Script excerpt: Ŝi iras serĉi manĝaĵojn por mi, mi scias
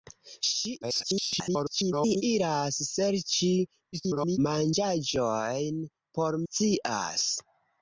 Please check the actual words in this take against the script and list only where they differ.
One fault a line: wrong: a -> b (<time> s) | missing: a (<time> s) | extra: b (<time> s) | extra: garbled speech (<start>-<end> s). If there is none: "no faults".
extra: garbled speech (0.8-2.2 s)
extra: garbled speech (3.9-4.4 s)
missing: mi mi (6.4 s)